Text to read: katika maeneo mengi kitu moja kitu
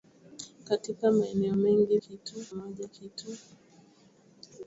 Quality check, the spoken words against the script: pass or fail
pass